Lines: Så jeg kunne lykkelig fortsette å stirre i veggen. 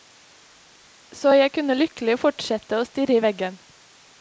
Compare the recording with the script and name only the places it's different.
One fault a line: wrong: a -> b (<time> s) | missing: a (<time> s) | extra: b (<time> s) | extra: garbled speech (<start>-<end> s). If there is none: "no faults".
no faults